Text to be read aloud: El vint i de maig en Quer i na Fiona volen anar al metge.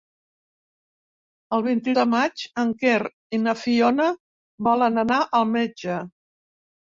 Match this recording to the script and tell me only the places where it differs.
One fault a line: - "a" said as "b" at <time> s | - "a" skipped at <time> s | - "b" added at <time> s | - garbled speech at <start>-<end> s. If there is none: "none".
none